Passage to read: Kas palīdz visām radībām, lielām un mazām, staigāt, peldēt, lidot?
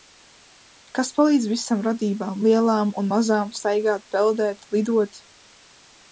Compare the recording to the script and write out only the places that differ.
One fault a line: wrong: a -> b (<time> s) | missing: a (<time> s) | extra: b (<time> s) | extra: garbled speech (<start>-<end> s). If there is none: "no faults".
no faults